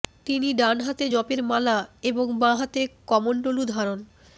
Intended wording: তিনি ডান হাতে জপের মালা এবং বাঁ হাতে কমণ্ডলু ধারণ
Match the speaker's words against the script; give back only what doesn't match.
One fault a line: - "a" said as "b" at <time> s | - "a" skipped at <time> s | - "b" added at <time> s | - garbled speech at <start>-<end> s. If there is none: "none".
none